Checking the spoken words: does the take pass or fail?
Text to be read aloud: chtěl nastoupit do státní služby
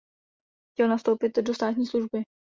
pass